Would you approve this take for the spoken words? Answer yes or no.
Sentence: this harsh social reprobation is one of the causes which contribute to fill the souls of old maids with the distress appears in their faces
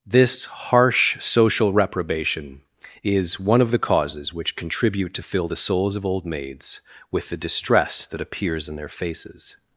no